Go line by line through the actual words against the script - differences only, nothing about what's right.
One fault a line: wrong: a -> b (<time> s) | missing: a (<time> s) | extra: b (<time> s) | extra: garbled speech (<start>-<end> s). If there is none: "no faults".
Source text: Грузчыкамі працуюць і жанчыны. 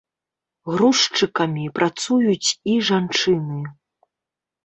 no faults